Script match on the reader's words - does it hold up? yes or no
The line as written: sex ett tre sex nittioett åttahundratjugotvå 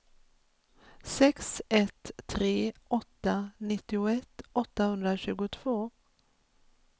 no